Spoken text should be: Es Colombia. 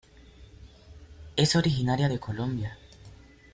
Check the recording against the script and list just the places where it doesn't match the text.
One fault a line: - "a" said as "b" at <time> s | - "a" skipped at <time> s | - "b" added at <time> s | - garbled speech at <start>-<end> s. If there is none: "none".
- "originaria de" added at 1.6 s